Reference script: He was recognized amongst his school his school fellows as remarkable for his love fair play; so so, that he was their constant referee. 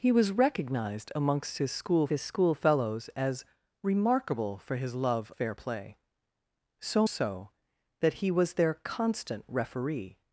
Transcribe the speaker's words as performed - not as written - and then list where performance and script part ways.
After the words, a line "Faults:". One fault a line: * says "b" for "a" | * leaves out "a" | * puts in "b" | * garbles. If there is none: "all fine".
He was recognized amongst his school his school fellows as remarkable for his love fair play; so so, that he was their constant referee.
Faults:
all fine